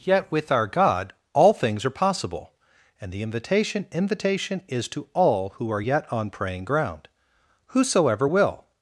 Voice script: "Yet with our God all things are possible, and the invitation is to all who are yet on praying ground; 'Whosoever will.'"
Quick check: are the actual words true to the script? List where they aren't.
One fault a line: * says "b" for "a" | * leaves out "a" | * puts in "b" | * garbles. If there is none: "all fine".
* puts in "invitation"